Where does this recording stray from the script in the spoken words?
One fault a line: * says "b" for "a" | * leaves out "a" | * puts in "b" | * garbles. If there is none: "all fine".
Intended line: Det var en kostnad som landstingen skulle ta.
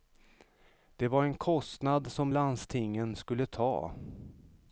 all fine